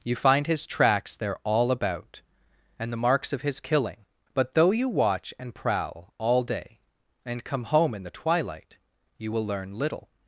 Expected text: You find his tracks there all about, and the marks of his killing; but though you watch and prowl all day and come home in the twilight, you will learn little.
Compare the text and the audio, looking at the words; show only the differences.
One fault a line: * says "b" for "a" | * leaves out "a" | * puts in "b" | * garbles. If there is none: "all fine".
all fine